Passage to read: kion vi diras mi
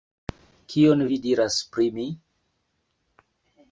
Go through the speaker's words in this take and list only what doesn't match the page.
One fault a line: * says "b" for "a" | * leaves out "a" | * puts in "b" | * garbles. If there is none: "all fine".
* puts in "pri"